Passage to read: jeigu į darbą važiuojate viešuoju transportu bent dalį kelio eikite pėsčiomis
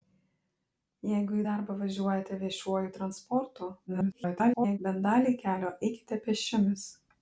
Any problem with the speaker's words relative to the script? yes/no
yes